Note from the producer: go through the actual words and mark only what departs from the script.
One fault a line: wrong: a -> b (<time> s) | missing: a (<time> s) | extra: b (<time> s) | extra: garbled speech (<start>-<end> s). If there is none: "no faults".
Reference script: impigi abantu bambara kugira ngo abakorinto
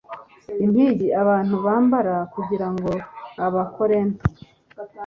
no faults